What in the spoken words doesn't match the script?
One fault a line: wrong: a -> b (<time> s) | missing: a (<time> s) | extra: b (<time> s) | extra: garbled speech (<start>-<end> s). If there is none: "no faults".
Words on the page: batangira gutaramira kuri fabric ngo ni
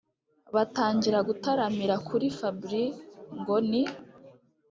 no faults